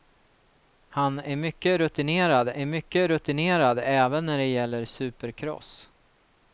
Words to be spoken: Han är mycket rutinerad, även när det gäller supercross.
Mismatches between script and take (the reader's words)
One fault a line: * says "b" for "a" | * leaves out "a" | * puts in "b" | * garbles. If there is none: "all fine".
* puts in "är mycket rutinerad"